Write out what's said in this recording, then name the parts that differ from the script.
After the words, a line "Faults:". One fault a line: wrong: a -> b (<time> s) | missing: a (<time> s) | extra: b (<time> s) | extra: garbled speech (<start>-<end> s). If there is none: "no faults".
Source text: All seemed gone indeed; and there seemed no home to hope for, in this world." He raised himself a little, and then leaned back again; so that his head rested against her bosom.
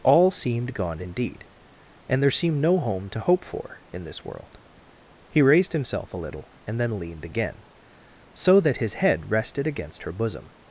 All seemed gone indeed; and there seemed no home to hope for, in this world." He raised himself a little, and then leaned again; so that his head rested against her bosom.
Faults:
missing: back (7.2 s)